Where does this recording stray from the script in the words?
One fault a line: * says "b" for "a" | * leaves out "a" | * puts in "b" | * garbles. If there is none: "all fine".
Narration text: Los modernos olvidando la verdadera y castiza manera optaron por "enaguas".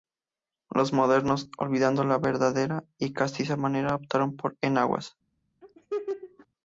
all fine